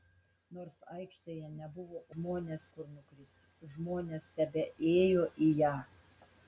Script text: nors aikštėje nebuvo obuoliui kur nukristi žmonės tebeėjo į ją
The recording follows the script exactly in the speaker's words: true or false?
false